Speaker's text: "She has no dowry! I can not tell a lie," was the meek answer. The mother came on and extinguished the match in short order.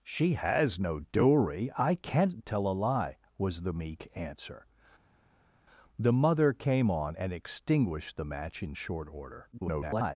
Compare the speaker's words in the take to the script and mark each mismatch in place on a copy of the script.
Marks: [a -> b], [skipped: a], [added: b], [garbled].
"She has no dowry! I can not tell a lie," was the meek answer. The mother came on and extinguished the match in short order. [garbled]